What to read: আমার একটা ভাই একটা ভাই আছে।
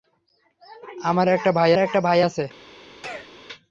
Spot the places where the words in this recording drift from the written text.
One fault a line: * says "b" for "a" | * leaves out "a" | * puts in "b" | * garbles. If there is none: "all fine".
all fine